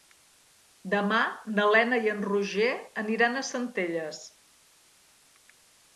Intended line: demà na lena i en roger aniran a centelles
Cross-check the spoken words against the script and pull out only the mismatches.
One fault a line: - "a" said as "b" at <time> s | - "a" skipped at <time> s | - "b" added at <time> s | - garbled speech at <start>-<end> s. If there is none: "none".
none